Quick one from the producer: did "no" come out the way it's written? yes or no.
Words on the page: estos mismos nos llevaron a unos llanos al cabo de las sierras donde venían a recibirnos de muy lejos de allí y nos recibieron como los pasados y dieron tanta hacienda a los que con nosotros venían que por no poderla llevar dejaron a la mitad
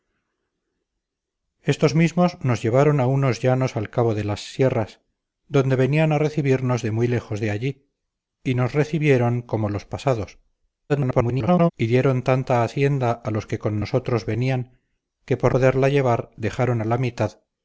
no